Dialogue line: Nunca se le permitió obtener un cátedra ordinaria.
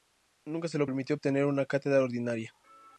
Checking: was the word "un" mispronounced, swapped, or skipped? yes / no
yes